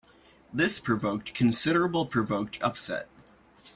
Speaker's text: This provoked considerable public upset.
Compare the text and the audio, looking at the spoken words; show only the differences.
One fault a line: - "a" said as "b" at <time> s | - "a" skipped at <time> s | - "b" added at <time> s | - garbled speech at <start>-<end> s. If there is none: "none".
- "public" said as "provoked" at 2.1 s